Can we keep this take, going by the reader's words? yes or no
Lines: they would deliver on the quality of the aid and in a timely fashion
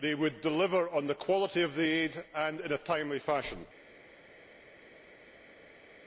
yes